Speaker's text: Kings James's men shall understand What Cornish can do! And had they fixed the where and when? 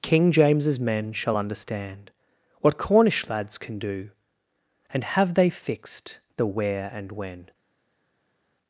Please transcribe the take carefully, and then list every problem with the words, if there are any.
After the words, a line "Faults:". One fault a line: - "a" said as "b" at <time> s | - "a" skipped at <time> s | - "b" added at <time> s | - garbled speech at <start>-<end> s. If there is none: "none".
King James's men shall understand What Cornish lads can do! And have they fixed the where and when?
Faults:
- "Kings" said as "King" at 0.0 s
- "lads" added at 3.3 s
- "had" said as "have" at 5.0 s